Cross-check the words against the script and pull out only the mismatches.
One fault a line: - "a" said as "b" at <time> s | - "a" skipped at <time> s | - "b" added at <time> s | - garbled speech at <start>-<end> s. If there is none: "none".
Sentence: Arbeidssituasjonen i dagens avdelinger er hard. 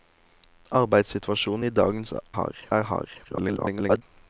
- "avdelinger" said as "hard" at 2.4 s
- garbled speech at 3.2-4.0 s